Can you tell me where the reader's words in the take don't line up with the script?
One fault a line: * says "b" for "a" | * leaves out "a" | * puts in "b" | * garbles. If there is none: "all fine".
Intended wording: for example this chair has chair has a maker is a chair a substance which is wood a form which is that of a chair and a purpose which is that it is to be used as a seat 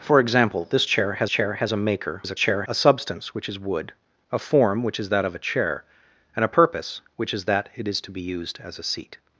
all fine